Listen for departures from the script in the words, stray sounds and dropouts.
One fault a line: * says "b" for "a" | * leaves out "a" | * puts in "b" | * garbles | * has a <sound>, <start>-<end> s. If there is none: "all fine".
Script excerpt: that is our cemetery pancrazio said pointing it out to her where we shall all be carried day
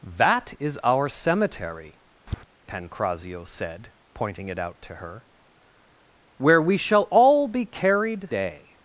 * has a tap, 2.3-2.4 s